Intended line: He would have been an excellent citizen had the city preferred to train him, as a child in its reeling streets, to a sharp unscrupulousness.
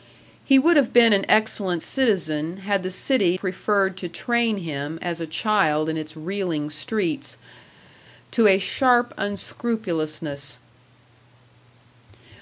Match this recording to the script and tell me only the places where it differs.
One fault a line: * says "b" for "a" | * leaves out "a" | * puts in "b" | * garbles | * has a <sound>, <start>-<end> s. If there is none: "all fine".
all fine